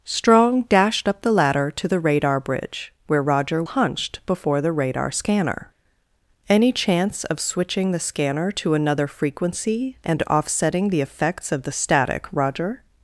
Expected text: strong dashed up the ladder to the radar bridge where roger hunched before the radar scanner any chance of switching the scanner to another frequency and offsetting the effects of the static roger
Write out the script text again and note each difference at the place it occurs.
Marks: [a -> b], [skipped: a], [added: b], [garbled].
strong dashed up the ladder to the radar bridge where roger hunched before the radar scanner any chance of switching the scanner to another frequency and offsetting the effects of the static roger